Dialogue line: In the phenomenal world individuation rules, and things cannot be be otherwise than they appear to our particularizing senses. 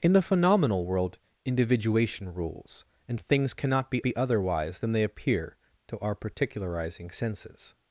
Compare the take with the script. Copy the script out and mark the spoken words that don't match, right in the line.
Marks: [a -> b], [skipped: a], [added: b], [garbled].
In the phenomenal world individuation rules, and things cannot be be otherwise than they appear to our particularizing senses.